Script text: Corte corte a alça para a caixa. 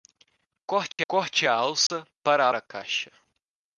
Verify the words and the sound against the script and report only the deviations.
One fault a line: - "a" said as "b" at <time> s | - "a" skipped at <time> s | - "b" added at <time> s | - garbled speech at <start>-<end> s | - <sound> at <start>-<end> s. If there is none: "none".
- dropout at 0.9-1.0 s
- dropout at 1.9-1.9 s